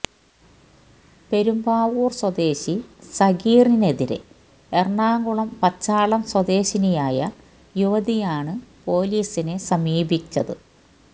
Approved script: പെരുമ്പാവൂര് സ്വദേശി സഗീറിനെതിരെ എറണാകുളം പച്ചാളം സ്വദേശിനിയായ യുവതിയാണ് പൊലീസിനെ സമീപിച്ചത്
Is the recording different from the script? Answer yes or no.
no